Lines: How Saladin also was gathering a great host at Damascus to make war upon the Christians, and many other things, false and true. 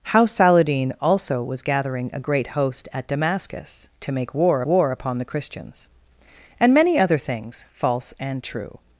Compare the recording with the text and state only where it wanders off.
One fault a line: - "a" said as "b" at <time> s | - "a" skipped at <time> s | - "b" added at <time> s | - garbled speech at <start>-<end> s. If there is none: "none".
- "war" added at 4.7 s